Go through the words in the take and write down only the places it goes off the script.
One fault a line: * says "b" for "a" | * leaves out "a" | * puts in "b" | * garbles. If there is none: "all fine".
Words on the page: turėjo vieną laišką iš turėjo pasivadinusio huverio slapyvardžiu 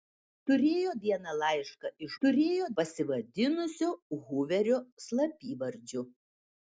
all fine